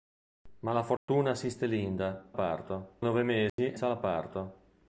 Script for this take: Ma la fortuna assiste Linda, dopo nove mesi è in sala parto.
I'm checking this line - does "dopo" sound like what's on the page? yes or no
no